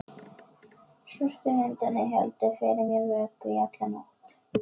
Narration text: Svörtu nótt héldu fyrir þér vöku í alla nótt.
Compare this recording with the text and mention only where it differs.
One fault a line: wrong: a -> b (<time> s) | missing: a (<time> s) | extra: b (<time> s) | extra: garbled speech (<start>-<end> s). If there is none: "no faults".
wrong: nótt -> hundarnir (1.6 s)
wrong: þér -> mér (2.9 s)